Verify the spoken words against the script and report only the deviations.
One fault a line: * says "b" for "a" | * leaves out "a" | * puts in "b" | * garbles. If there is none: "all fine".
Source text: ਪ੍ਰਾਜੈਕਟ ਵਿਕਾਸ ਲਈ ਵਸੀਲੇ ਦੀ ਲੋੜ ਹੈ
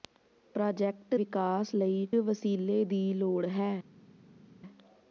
all fine